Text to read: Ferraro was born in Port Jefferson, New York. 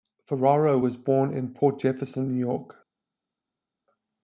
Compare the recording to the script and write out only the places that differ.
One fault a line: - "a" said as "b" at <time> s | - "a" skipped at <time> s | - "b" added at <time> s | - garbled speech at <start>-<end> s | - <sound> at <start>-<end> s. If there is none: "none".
none